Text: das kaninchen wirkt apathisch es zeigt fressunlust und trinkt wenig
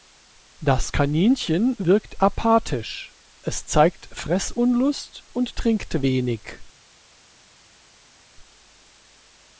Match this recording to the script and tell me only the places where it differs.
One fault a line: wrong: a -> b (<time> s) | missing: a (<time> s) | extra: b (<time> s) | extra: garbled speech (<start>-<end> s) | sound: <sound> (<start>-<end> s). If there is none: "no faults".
no faults